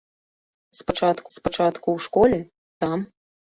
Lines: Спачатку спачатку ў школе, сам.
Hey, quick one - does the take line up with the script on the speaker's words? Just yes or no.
yes